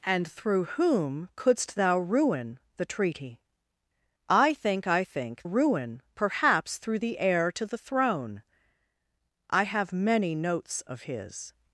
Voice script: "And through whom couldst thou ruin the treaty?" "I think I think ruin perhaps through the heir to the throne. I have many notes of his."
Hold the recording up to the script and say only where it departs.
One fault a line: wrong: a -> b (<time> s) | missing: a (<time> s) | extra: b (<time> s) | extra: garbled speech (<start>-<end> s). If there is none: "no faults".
no faults